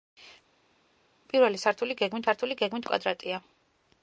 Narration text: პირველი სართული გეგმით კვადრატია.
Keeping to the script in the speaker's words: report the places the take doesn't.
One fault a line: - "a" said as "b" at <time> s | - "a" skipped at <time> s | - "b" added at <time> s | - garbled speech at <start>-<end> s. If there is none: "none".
- "სართული გეგმით" added at 2.3 s